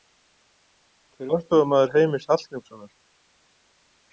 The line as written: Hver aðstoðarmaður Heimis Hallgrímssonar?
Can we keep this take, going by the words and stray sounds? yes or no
yes